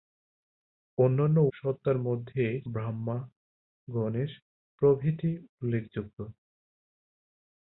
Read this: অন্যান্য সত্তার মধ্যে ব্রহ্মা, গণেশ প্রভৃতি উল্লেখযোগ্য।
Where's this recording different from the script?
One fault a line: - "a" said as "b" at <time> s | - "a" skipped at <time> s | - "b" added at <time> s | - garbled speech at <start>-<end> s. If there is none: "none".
none